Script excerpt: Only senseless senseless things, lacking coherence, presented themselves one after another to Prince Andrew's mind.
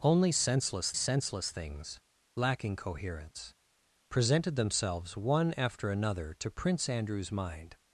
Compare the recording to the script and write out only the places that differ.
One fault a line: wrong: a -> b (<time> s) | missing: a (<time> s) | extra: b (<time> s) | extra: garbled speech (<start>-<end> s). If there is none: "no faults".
no faults